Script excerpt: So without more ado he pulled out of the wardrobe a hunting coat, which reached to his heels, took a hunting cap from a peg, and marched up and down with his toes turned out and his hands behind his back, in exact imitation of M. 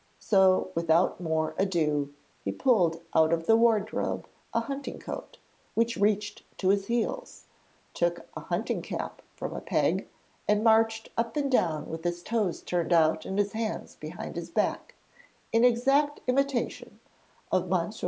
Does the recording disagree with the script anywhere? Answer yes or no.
no